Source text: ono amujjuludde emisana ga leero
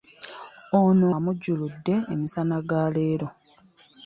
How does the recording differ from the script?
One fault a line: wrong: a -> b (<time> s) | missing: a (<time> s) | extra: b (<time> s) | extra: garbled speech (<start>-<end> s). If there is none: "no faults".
no faults